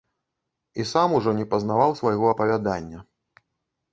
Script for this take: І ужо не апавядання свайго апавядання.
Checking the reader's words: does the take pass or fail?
fail